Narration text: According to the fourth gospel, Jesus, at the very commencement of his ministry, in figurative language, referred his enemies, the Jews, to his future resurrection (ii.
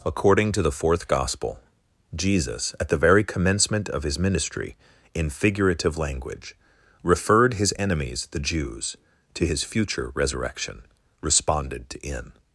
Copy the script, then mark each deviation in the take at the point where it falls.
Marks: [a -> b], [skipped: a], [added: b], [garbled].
According to the fourth gospel, Jesus, at the very commencement of his ministry, in figurative language, referred his enemies, the Jews, to his future resurrection [(ii. -> responded to in]